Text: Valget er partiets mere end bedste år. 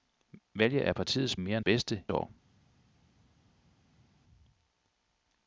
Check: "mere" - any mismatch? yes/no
no